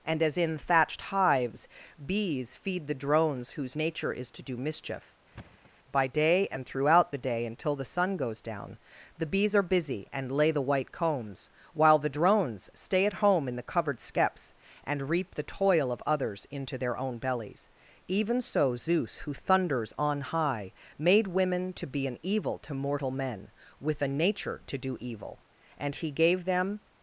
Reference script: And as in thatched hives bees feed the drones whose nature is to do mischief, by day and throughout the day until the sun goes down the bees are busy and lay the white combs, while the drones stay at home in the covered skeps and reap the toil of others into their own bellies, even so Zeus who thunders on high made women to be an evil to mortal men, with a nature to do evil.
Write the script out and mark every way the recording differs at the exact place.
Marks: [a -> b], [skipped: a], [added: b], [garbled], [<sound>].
And as in thatched hives bees feed the drones whose nature is to do mischief, [thud] by day and throughout the day until the sun goes down the bees are busy and lay the white combs, while the drones stay at home in the covered skeps and reap the toil of others into their own bellies, even so Zeus who thunders on high made women to be an evil to mortal men, with a nature to do evil. [added: And he gave them]